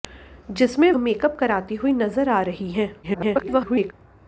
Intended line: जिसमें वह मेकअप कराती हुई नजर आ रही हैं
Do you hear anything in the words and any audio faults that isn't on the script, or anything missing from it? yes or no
yes